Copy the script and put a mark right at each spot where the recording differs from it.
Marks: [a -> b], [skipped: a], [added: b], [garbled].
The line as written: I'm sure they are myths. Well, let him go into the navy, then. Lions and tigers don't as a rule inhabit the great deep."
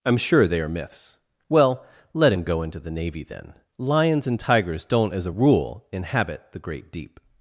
I'm sure they are myths. Well, let him go into the navy, then. Lions and tigers don't as a rule inhabit the great deep."